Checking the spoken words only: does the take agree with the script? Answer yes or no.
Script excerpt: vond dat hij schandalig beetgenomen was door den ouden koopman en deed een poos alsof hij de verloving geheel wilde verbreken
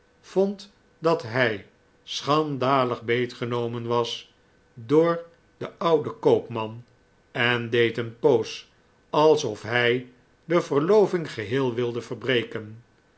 yes